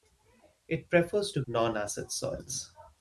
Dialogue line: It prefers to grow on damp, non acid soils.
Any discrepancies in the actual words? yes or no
yes